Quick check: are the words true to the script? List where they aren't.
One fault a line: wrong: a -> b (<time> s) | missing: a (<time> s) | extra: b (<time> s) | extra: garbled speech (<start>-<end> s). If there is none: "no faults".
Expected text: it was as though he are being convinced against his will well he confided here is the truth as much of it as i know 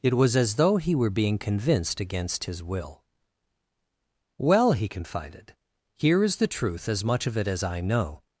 wrong: are -> were (0.9 s)